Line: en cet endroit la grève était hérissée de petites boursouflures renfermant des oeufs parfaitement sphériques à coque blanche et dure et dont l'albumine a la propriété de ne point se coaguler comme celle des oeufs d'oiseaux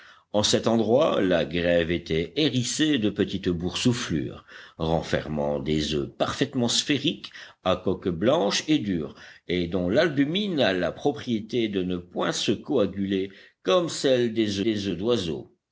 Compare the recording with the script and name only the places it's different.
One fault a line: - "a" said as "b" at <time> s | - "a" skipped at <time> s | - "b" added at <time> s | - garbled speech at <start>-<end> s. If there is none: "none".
- "des" added at 14.6 s